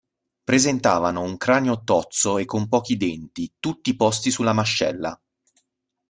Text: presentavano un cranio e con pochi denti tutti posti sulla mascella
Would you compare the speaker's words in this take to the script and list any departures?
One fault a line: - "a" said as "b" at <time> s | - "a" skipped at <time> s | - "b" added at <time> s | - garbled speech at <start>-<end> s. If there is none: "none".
- "tozzo" added at 1.8 s